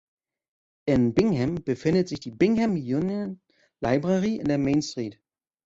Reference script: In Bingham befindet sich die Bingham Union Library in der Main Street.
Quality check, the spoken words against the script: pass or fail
pass